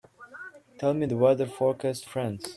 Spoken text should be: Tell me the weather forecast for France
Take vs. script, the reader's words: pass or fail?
fail